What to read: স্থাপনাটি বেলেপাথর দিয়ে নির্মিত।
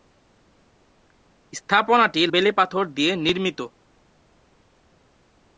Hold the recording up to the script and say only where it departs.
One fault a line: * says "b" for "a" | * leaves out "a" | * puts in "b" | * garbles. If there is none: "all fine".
all fine